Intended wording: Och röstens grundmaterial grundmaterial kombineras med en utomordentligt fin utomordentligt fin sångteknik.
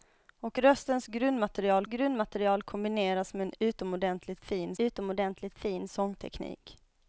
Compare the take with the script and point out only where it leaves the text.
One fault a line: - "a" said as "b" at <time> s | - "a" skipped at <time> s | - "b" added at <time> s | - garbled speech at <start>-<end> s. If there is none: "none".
none